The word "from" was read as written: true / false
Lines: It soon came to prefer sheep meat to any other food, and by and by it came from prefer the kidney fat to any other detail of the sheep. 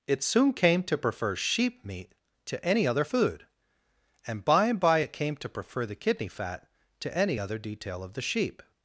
false